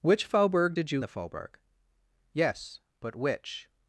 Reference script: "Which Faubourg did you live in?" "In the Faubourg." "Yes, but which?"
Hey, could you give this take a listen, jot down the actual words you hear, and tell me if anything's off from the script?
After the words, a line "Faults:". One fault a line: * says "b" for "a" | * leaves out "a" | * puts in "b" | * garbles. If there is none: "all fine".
"Which Faubourg did you the Faubourg." "Yes, but which?"
Faults:
* leaves out "live in In"